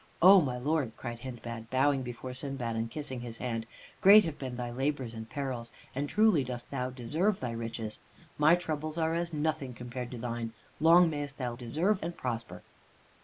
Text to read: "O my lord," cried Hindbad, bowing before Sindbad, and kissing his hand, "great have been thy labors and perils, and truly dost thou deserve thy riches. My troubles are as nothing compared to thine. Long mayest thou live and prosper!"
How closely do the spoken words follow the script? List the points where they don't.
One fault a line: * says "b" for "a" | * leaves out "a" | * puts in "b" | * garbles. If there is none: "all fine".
* says "deserve" for "live"